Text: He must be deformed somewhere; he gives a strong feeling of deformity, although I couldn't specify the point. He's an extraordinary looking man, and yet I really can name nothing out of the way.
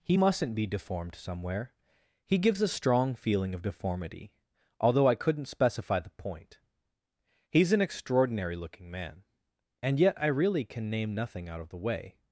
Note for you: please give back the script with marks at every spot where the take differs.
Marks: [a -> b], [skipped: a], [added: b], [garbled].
He [must -> mustn't] be deformed somewhere; he gives a strong feeling of deformity, although I couldn't specify the point. He's an extraordinary looking man, and yet I really can name nothing out of the way.